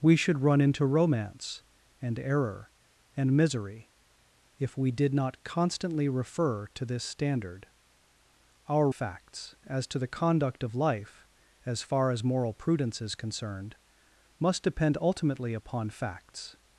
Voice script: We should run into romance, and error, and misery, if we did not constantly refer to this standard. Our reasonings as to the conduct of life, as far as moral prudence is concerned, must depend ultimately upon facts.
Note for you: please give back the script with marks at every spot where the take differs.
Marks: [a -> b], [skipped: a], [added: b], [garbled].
We should run into romance, and error, and misery, if we did not constantly refer to this standard. Our [reasonings -> facts] as to the conduct of life, as far as moral prudence is concerned, must depend ultimately upon facts.